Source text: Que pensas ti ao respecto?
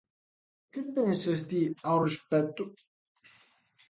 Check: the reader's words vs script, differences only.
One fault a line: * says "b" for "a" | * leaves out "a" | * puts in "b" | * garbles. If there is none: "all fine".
all fine